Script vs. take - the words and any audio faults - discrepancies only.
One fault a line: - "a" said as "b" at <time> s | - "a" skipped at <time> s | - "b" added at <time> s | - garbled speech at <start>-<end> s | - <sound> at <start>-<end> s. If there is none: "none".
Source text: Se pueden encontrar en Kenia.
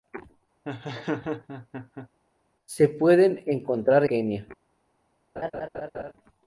- laugh at 0.6-2.1 s
- "en" skipped at 4.0 s
- laugh at 5.4-6.1 s